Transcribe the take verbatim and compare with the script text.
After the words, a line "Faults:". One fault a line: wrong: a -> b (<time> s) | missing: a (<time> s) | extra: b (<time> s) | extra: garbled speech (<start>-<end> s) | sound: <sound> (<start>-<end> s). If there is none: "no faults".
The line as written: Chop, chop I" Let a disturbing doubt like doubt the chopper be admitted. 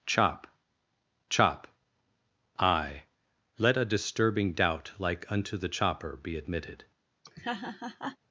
Chop, chop I" Let a disturbing doubt like unto the chopper be admitted.
Faults:
wrong: doubt -> unto (5.3 s)
sound: laugh (7.2-8.2 s)